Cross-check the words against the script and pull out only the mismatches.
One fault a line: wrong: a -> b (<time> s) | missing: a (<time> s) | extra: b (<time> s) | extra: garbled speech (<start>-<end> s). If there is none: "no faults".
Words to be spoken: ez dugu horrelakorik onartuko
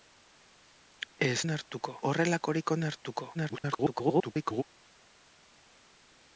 wrong: dugu -> onartuko (1.4 s)
extra: garbled speech (3.3-4.6 s)